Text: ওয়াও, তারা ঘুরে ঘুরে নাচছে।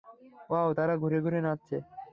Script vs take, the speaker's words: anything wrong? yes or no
no